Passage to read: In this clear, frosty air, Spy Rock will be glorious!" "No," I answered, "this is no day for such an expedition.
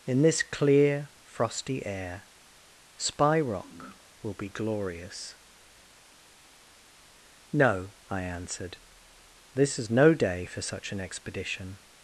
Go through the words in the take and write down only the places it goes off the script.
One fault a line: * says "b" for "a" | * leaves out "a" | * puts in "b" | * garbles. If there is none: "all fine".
all fine